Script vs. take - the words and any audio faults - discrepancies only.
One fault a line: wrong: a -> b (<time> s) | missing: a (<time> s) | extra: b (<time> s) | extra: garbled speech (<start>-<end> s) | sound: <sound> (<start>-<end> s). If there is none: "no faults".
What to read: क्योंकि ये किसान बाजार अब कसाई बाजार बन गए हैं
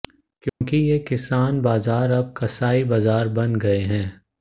sound: dropout (0.5-0.6 s)